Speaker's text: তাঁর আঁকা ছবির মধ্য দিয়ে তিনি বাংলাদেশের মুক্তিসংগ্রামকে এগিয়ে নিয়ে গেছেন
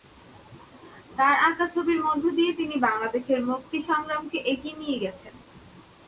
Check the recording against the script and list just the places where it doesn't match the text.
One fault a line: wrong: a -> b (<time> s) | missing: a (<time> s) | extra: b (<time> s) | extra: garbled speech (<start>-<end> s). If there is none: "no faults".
no faults